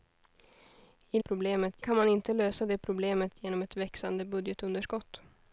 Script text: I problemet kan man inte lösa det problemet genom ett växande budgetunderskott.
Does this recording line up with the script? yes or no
yes